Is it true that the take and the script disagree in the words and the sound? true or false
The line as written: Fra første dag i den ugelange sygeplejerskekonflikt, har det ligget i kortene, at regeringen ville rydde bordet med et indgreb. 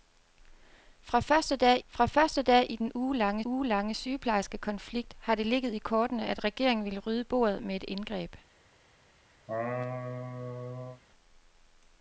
true